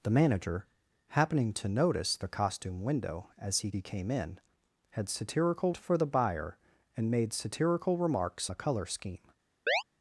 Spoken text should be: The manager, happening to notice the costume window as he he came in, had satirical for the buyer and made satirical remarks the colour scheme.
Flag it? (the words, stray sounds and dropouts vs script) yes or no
yes